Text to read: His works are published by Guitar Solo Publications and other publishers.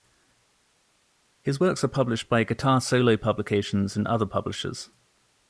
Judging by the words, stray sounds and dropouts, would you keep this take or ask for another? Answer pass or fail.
pass